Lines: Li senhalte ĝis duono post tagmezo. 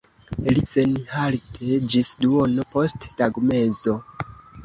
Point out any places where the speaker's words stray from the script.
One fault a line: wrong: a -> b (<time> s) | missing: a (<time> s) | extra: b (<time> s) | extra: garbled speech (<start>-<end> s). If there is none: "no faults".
no faults